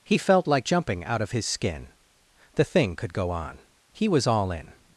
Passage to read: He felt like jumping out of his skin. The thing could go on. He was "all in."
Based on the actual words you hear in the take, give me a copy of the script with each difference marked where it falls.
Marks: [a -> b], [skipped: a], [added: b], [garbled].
He felt like jumping out of his skin. The thing could go on. He was "all in."